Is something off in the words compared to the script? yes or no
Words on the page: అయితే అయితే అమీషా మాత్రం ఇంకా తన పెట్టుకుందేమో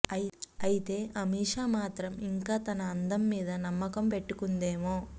yes